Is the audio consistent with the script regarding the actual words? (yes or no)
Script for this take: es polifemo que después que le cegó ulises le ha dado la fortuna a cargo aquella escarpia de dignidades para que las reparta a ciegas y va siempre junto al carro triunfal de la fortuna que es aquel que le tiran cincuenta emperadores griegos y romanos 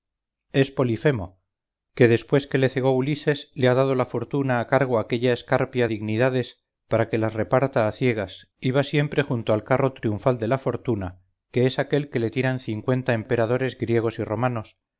no